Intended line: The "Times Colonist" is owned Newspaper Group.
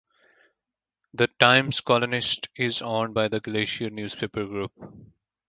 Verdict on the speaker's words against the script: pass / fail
fail